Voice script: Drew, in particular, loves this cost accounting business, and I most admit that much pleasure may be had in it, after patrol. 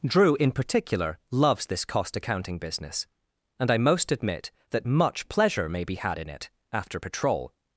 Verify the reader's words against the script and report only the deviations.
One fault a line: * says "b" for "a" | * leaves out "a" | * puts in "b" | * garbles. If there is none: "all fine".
all fine